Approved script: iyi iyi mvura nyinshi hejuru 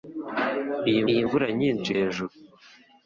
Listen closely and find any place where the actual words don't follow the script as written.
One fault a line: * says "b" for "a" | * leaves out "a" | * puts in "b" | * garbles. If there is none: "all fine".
all fine